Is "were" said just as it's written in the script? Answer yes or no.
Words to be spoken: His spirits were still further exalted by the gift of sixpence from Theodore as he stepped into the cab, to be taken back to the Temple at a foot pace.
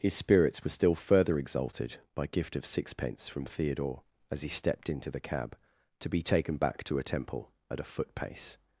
yes